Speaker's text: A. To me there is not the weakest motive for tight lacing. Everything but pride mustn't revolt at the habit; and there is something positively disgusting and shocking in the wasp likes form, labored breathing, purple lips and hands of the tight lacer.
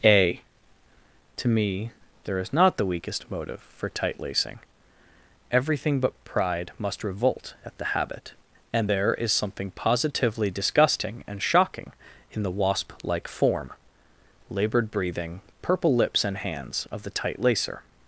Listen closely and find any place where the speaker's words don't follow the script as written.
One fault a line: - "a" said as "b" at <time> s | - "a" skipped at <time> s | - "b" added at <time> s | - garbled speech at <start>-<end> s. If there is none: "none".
- "mustn't" said as "must" at 6.8 s
- "likes" said as "like" at 13.0 s